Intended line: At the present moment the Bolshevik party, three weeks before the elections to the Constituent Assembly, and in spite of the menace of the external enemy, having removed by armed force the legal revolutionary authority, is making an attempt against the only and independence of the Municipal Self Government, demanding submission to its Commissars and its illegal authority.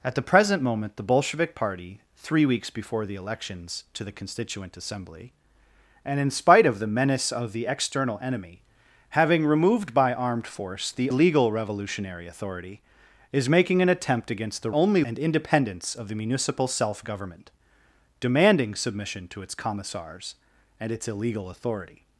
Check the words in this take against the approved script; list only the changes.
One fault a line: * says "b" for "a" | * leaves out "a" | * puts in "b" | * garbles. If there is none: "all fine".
all fine